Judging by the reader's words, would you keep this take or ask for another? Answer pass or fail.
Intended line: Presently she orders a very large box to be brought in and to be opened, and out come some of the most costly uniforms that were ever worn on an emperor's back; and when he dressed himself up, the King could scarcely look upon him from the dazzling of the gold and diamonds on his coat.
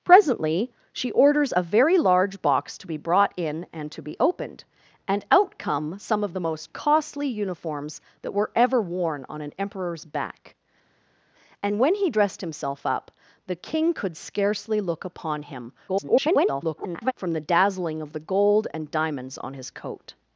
fail